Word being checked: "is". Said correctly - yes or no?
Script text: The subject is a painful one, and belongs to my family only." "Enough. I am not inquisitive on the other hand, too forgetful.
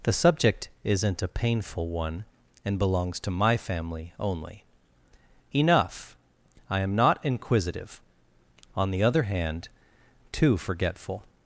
no